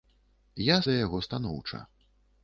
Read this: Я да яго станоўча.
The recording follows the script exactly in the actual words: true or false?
true